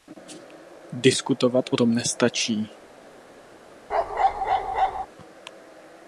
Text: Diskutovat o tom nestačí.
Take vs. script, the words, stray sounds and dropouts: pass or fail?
fail